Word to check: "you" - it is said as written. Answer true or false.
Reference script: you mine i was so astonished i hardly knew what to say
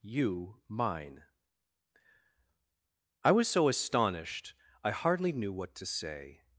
true